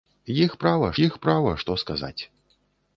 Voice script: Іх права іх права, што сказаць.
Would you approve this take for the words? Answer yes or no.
yes